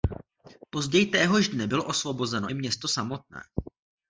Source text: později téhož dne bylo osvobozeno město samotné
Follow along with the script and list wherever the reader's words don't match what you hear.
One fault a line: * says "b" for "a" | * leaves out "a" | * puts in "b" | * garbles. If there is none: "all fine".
* puts in "i"